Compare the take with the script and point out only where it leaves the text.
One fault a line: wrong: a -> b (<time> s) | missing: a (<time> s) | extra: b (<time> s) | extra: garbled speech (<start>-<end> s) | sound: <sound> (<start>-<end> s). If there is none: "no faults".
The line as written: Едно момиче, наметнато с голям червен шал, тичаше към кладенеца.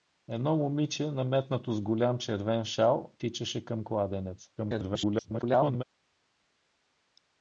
extra: garbled speech (4.6-5.8 s)